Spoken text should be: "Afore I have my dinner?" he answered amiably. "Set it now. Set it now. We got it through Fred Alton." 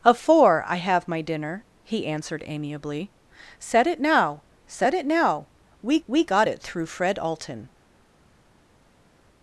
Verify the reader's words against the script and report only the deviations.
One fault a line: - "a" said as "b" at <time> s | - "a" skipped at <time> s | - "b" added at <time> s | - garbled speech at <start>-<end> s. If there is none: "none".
- "we" added at 6.1 s